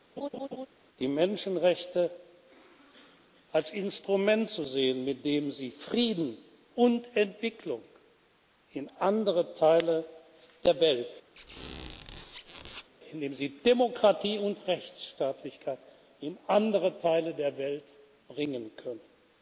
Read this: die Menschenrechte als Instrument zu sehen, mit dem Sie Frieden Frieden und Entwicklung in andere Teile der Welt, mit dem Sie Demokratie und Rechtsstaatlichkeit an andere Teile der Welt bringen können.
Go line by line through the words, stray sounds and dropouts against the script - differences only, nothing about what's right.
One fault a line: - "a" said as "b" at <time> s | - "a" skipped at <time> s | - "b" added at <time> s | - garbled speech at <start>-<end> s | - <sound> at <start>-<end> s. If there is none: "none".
- laugh at 0.2-0.7 s
- "Frieden" skipped at 6.4 s
- squeak at 11.4-12.9 s
- "an" said as "in" at 16.2 s